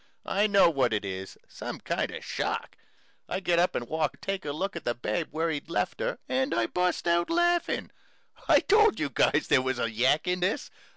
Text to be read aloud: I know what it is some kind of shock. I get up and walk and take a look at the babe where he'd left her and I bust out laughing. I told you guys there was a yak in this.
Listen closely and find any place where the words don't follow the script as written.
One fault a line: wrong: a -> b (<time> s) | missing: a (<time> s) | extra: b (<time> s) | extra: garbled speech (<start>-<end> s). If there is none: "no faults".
no faults